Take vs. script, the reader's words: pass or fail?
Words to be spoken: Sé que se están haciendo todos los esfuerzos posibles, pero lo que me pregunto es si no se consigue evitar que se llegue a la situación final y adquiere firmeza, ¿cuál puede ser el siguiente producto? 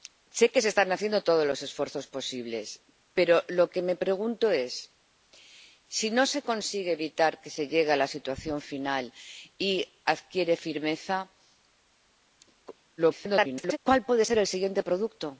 fail